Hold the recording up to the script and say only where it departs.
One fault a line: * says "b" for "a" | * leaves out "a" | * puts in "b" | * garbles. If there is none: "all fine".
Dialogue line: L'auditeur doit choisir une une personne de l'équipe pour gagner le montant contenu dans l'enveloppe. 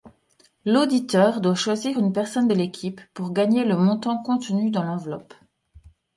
* leaves out "une"